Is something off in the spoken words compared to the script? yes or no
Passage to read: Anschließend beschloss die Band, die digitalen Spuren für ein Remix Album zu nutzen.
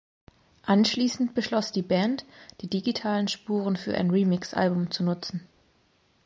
no